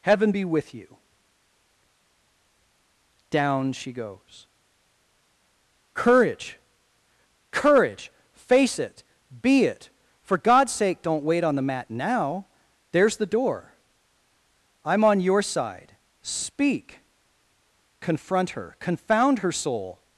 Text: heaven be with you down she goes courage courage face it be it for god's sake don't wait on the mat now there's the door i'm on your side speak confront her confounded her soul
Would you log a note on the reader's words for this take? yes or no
yes